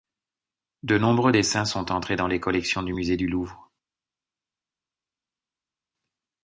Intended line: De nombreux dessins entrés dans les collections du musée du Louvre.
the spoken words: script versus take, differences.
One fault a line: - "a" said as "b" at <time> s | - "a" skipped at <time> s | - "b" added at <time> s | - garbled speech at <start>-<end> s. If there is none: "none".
- "sont" added at 1.6 s